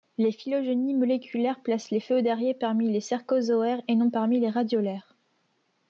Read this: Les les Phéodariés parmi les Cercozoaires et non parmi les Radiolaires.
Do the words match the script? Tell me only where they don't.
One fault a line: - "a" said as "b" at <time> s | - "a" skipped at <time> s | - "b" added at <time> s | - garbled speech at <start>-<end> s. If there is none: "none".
- "phylogénies moléculaires placent" added at 0.3 s